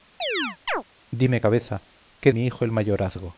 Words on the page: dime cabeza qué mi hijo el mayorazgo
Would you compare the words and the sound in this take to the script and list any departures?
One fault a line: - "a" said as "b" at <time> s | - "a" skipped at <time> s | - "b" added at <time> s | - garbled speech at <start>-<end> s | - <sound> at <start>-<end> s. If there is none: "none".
- chirp at 0.2-0.8 s